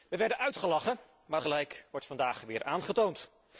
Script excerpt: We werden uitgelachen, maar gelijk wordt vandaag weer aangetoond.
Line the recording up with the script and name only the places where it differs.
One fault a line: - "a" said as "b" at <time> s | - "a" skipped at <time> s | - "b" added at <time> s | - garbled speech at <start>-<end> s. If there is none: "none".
none